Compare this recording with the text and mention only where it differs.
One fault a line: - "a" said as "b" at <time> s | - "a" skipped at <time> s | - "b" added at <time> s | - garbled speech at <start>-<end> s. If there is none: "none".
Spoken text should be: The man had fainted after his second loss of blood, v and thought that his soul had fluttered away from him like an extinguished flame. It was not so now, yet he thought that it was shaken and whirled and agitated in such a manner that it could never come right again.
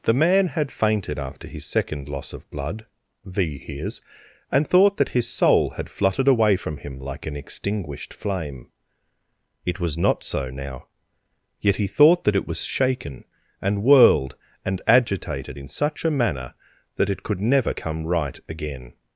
- "hears" added at 3.6 s